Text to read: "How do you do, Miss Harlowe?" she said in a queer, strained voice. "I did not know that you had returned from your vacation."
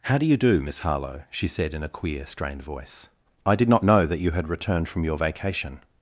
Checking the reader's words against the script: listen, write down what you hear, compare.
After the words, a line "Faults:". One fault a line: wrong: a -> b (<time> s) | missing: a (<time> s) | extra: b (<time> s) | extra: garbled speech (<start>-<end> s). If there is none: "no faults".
"How do you do, Miss Harlowe?" she said in a queer, strained voice. "I did not know that you had returned from your vacation."
Faults:
no faults